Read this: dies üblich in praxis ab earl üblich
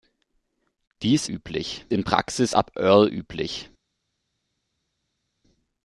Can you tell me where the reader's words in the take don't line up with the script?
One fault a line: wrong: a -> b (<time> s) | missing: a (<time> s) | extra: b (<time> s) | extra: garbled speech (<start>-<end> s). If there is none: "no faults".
no faults